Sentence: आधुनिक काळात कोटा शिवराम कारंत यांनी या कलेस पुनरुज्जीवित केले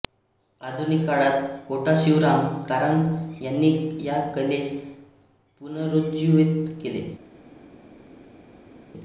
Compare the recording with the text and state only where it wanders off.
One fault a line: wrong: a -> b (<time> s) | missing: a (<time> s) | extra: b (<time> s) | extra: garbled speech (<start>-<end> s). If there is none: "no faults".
no faults